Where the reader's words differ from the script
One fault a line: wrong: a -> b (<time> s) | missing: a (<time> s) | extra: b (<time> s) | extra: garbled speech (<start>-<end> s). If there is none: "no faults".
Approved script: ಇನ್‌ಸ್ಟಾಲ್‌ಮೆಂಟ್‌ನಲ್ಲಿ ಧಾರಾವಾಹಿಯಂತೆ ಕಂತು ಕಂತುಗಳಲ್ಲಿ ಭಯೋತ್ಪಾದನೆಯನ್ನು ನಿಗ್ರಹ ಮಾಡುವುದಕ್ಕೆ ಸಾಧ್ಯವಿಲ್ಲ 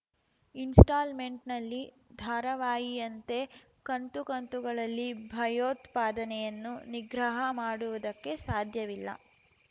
no faults